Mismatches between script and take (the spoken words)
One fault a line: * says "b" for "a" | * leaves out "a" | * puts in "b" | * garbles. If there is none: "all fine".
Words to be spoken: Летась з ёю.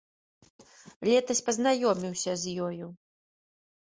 * puts in "пазнаёміўся"